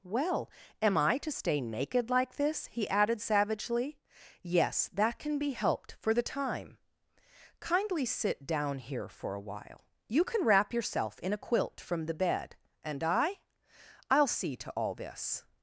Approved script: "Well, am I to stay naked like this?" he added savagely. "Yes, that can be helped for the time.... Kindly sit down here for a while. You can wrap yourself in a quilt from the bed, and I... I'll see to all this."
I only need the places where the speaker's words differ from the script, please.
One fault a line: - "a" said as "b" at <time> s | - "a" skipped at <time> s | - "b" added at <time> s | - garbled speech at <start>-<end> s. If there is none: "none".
none